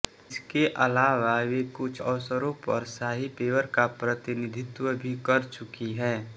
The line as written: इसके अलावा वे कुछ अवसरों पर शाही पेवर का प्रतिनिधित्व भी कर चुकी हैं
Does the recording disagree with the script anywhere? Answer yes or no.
no